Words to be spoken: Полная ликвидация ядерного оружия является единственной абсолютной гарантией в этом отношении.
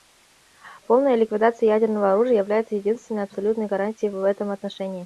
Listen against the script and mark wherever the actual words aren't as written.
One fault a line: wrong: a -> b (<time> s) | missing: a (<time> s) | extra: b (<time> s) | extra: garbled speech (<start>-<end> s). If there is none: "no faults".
no faults